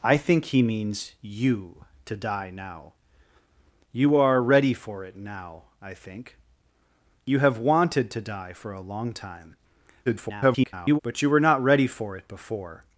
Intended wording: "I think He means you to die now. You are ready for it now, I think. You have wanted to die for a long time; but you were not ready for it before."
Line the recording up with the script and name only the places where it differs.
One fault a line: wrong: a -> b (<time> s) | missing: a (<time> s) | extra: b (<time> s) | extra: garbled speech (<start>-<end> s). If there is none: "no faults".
extra: garbled speech (10.1-11.0 s)